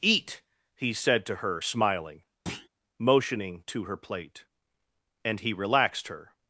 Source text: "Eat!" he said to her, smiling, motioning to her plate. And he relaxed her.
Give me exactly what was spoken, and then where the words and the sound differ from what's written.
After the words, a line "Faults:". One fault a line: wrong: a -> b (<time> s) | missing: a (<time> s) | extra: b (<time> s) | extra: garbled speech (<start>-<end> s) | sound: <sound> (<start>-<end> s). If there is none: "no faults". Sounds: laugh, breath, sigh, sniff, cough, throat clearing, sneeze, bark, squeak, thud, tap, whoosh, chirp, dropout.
"Eat!" he said to her, smiling, motioning to her plate. And he relaxed her.
Faults:
sound: thud (2.5-2.7 s)